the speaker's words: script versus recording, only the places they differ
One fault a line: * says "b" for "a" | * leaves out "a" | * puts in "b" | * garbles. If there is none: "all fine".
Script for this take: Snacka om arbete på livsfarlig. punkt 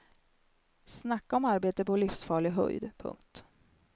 * puts in "höjd"